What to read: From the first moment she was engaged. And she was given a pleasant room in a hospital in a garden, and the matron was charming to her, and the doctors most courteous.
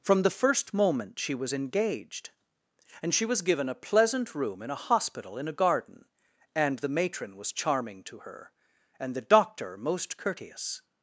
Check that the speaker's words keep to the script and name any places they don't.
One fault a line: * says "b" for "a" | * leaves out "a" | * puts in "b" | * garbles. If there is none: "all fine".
* says "doctor" for "doctors"